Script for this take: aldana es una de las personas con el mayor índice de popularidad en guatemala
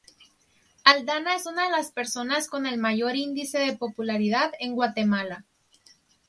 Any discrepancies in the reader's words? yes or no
no